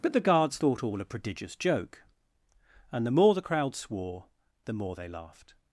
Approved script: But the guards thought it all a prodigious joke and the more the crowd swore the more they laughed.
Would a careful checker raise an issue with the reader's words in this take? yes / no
yes